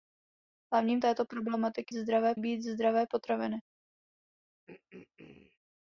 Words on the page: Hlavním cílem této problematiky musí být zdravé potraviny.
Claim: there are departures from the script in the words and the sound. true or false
true